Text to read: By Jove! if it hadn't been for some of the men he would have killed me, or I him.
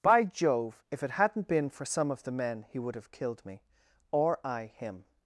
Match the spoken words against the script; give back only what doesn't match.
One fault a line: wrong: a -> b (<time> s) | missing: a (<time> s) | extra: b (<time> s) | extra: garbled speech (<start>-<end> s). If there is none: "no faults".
no faults